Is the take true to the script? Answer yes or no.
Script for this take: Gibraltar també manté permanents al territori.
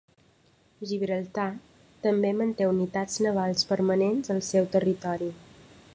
no